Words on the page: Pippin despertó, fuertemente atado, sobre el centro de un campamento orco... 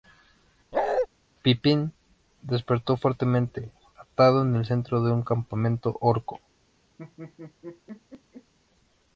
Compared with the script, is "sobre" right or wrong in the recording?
wrong